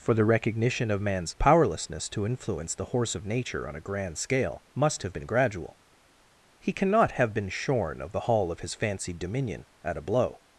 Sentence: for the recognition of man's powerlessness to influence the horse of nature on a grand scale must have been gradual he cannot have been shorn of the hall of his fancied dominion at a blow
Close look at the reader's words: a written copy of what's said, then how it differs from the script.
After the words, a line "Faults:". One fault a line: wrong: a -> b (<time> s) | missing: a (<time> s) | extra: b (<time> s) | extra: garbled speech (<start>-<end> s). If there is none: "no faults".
for the recognition of man's powerlessness to influence the horse of nature on a grand scale must have been gradual he cannot have been shorn of the hall of his fancied dominion at a blow
Faults:
no faults